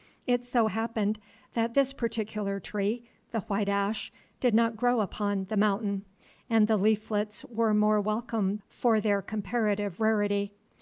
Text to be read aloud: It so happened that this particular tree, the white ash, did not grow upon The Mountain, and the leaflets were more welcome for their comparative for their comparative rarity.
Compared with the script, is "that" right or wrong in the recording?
right